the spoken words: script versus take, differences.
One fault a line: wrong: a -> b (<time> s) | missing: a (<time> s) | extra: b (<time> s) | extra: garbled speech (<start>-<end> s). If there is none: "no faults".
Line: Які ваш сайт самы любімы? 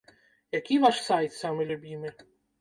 no faults